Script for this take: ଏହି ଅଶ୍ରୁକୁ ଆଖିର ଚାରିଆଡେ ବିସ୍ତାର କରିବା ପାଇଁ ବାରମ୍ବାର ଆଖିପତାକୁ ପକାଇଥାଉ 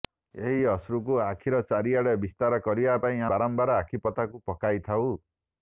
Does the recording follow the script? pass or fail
pass